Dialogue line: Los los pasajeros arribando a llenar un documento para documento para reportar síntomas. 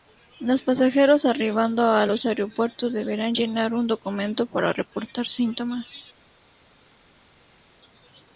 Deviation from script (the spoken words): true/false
true